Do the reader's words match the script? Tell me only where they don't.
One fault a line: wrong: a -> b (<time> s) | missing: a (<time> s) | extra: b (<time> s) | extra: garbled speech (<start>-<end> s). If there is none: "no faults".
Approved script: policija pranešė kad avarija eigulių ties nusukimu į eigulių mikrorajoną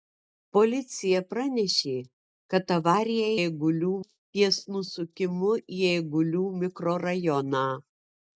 no faults